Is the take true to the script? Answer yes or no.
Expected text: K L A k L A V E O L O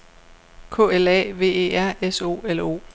no